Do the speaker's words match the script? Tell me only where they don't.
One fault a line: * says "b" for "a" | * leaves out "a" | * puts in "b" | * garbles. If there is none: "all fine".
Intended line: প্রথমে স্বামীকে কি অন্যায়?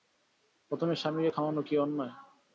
* puts in "খাওয়ানো"